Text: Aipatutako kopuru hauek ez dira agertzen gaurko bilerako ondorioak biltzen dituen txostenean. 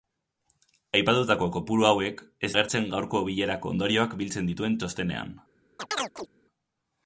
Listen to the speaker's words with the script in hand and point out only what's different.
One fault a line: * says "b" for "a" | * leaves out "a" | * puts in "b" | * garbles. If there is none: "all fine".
* leaves out "dira"